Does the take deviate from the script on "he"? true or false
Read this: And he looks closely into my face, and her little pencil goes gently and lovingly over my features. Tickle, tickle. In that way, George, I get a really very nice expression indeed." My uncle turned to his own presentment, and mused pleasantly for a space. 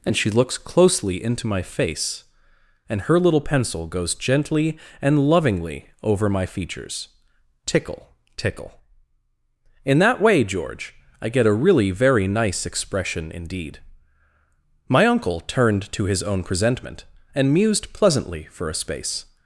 true